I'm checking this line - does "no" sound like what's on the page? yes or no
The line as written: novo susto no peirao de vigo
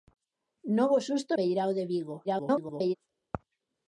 no